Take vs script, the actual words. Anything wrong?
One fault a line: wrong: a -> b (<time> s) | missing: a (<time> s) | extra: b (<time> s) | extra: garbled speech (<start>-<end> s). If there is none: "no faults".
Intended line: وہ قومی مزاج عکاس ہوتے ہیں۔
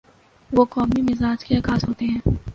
extra: کے (1.4 s)